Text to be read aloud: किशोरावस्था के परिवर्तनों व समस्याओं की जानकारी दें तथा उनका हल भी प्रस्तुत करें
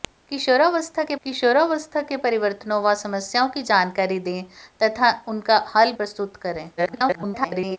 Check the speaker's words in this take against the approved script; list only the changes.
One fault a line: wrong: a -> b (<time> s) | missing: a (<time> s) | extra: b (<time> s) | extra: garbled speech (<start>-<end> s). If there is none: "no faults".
extra: किशोरावस्था के (1.2 s)
missing: भी (5.9 s)
extra: garbled speech (6.8-7.8 s)